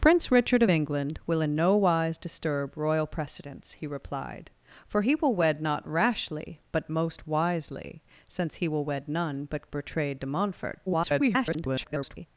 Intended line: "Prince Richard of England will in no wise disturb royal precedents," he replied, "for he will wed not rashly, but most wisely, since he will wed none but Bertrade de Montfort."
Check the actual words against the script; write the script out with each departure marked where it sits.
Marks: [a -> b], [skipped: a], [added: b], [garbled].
"Prince Richard of England will in no wise disturb royal precedents," he replied, "for he will wed not rashly, but most wisely, since he will wed none but Bertrade de Montfort." [garbled]